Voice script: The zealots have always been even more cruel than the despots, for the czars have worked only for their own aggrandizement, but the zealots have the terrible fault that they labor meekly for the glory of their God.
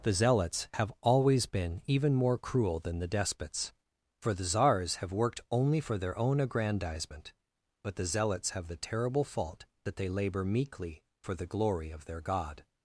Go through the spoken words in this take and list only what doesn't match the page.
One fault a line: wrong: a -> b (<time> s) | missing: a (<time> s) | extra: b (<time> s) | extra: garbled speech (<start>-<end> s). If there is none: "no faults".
no faults